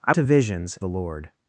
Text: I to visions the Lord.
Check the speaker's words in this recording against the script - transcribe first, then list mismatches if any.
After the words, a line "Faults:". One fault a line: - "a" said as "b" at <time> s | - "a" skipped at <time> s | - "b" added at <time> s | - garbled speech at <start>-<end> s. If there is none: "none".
I to visions the Lord.
Faults:
none